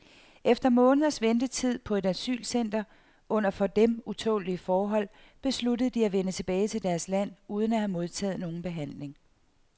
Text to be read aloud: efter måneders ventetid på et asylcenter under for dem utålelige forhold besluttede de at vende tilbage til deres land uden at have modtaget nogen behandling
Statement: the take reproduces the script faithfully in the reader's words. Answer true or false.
true